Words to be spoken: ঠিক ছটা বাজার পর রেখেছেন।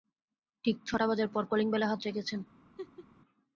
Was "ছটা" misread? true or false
false